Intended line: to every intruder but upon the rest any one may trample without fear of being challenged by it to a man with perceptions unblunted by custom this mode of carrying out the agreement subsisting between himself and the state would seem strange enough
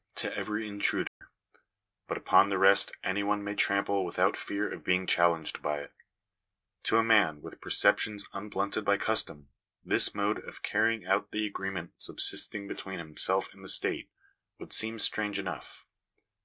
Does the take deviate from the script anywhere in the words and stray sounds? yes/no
yes